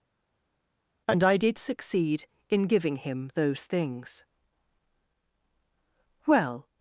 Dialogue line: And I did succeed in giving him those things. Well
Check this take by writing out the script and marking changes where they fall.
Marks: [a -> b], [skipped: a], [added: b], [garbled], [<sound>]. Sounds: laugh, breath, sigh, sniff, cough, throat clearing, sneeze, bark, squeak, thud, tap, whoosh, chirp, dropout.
And I did succeed in giving him those things. Well